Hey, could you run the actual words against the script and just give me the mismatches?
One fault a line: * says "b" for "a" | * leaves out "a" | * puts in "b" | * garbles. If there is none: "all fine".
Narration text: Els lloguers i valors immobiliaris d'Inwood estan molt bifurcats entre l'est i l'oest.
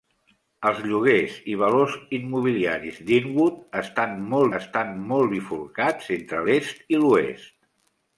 * puts in "estan molt"